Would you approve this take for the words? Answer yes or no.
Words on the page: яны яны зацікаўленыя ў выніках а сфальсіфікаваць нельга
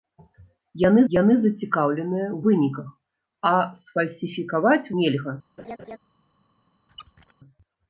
yes